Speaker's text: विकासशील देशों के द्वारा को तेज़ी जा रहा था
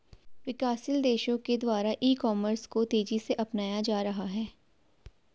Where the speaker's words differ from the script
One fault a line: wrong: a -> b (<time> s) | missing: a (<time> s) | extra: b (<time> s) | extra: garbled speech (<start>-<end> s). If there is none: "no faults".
extra: ई कॉमर्स (2.0 s)
extra: से अपनाया (3.2 s)
wrong: था -> है (4.3 s)